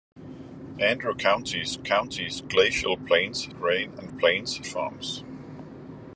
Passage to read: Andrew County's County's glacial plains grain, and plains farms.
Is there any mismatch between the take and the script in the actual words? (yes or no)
no